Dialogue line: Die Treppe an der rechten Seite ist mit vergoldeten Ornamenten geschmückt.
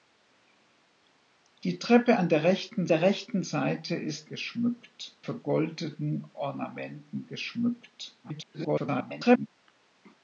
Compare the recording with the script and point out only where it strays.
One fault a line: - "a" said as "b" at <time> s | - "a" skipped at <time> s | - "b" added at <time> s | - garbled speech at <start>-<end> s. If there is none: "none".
- "der rechten" added at 2.9 s
- "mit" said as "geschmückt" at 4.3 s
- garbled speech at 8.2-9.5 s